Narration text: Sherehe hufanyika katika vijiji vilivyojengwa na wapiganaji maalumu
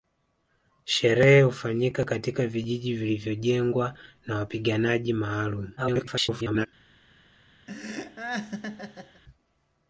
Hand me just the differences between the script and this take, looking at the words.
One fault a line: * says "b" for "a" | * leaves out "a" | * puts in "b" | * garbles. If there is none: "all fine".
* garbles